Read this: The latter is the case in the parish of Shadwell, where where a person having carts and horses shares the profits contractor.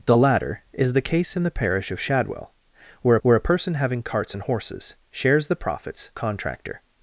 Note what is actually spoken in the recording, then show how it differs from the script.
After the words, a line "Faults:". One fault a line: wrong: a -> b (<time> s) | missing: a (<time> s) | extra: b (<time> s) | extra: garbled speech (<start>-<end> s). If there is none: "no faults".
The latter is the case in the parish of Shadwell, where where a person having carts and horses shares the profits contractor.
Faults:
no faults